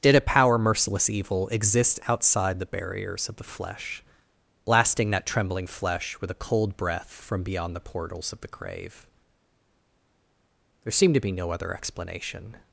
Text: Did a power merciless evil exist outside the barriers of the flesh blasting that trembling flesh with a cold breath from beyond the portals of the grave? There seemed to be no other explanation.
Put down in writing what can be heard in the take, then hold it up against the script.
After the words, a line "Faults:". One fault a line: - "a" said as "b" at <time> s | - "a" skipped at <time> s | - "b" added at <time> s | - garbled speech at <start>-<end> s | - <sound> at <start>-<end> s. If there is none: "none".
Did a power merciless evil exist outside the barriers of the flesh blasting that trembling flesh with a cold breath from beyond the portals of the grave? There seemed to be no other explanation.
Faults:
none